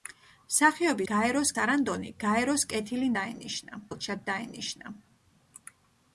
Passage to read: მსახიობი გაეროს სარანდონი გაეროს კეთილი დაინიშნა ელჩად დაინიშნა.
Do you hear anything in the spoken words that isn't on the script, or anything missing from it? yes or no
no